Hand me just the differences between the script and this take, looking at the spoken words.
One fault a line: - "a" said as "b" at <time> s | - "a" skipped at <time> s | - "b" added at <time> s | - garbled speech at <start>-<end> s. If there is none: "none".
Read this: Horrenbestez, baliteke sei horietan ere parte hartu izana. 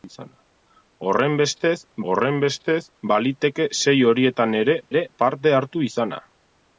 - "horrenbestez" added at 2.1 s
- "ere" added at 4.9 s